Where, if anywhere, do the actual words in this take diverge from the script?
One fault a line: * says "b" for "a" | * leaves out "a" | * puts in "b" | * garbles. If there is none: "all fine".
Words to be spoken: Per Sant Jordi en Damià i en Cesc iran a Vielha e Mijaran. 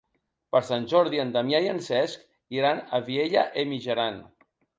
all fine